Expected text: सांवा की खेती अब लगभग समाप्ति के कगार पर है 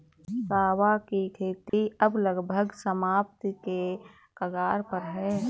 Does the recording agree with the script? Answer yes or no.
yes